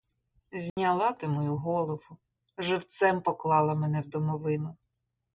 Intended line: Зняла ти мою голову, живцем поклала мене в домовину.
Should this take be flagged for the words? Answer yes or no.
no